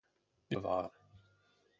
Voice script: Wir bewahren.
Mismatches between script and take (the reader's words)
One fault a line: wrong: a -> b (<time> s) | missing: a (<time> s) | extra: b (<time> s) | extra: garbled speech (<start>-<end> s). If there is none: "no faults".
no faults